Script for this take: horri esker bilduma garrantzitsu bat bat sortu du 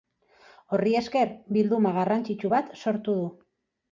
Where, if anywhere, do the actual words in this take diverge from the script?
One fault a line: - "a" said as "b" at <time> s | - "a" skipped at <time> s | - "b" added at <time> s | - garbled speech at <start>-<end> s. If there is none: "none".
- "bat" skipped at 2.7 s